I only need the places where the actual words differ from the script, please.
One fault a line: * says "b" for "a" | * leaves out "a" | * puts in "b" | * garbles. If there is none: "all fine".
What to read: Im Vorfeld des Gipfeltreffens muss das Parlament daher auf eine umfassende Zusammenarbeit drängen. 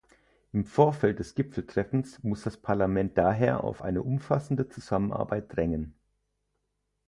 all fine